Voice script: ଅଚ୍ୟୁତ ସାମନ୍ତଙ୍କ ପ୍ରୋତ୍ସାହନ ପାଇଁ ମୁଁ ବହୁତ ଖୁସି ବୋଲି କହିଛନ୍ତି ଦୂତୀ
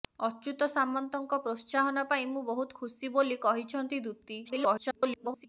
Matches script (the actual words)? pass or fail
fail